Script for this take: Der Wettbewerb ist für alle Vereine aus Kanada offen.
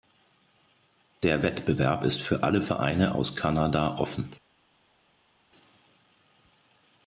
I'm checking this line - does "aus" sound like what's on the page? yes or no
yes